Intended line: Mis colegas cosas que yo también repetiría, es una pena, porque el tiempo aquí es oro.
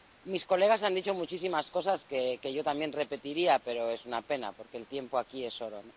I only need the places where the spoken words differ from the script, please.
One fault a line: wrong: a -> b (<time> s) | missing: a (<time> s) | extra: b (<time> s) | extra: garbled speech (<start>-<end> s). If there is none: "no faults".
extra: han dicho muchísimas (0.8 s)
extra: pero (3.6 s)